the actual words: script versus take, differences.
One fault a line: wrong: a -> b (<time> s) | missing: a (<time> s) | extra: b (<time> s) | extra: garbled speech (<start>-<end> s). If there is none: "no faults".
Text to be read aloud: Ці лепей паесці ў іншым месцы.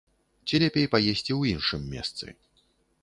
no faults